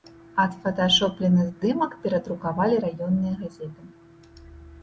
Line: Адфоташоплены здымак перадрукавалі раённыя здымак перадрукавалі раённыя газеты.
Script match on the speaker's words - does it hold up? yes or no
no